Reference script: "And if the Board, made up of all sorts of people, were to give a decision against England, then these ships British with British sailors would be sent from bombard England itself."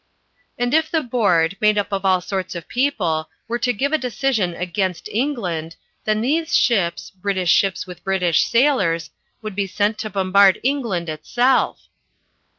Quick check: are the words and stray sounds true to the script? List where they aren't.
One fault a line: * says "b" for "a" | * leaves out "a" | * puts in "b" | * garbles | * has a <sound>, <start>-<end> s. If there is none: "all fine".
* puts in "ships"
* says "to" for "from"